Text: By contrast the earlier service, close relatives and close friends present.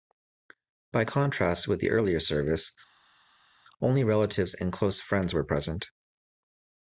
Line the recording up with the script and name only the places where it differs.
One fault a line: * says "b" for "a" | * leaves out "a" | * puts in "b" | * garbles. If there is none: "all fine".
* puts in "with"
* says "only" for "close"
* puts in "were"